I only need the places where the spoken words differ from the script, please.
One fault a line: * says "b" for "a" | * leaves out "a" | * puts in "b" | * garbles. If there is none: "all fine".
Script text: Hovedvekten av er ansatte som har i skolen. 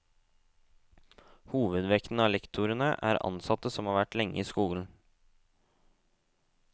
* puts in "lektorene"
* puts in "vært lenge"